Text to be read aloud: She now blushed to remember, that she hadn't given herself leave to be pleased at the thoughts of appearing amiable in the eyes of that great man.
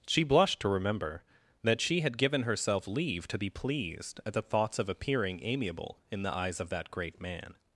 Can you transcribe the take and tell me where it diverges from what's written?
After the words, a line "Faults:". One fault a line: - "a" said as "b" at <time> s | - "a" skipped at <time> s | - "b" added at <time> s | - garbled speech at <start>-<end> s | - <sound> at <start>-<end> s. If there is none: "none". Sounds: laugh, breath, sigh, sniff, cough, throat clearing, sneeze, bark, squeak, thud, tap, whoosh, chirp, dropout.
She blushed to remember, that she had given herself leave to be pleased at the thoughts of appearing amiable in the eyes of that great man.
Faults:
- "now" skipped at 0.2 s
- "hadn't" said as "had" at 2.0 s